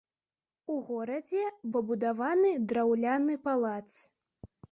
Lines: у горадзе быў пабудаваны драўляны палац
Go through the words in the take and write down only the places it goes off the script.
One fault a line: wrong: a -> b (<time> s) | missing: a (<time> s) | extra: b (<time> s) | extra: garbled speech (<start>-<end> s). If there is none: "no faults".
missing: быў (1.4 s)